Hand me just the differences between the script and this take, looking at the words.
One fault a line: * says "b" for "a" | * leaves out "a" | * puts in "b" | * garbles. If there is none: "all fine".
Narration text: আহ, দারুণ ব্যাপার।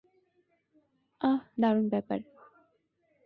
all fine